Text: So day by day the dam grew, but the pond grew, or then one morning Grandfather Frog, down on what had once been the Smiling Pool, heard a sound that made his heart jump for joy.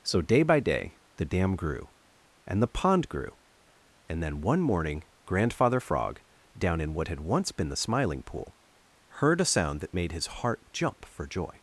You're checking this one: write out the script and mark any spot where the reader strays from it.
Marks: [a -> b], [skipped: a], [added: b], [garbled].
So day by day the dam grew, [but -> and] the pond grew, [or -> and] then one morning Grandfather Frog, down [on -> in] what had once been the Smiling Pool, heard a sound that made his heart jump for joy.